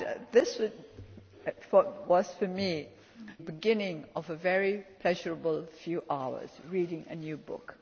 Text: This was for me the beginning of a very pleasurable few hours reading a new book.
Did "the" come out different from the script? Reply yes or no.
yes